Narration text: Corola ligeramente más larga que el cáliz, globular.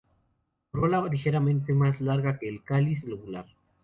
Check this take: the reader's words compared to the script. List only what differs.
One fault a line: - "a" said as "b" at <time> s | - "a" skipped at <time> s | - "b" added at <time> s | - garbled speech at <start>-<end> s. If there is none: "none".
none